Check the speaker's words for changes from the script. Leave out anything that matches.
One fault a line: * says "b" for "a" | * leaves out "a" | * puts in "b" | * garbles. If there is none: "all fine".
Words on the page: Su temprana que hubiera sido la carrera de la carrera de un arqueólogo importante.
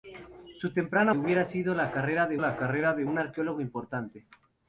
all fine